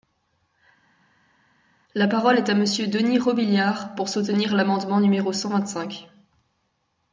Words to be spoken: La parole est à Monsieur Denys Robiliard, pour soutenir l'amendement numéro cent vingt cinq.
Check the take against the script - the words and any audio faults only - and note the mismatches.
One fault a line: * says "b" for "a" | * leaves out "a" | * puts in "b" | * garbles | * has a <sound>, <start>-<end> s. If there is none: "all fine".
all fine